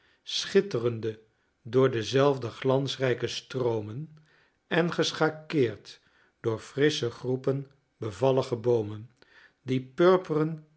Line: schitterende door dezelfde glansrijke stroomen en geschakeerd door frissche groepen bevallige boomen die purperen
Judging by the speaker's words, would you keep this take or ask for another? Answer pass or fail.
pass